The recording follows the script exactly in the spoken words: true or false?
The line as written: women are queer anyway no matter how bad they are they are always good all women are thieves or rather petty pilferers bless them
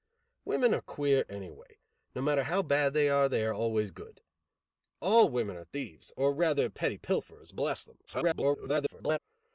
false